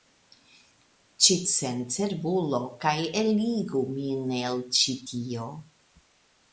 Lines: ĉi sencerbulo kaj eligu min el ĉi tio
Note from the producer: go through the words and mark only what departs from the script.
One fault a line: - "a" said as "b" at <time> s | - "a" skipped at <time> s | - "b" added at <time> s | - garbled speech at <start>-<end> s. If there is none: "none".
none